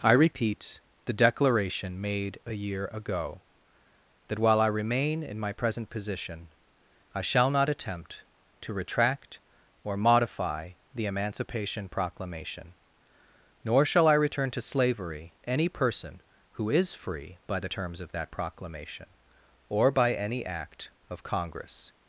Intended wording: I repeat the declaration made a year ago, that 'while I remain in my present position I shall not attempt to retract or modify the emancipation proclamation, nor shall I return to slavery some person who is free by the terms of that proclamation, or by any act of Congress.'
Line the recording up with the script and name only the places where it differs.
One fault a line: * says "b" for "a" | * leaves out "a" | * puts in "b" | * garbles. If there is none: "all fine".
* says "any" for "some"